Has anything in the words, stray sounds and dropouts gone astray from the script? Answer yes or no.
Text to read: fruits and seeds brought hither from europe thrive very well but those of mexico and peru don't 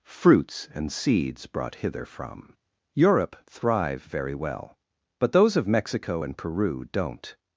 no